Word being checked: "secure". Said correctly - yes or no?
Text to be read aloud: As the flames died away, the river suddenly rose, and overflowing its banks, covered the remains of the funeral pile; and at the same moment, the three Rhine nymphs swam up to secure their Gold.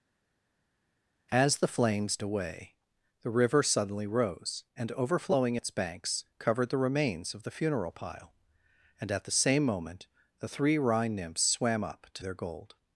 no